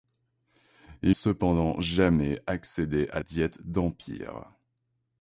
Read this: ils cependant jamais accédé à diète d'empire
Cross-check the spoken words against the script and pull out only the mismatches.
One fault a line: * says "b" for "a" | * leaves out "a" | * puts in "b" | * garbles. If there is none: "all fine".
all fine